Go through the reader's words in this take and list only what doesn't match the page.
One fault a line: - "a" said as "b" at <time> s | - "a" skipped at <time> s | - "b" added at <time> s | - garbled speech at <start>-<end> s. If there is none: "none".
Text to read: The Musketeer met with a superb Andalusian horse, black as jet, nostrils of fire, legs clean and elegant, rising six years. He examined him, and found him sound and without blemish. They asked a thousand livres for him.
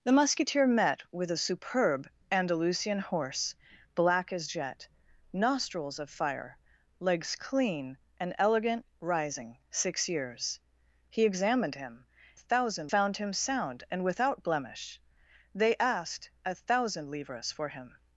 - "and" said as "thousand" at 12.4 s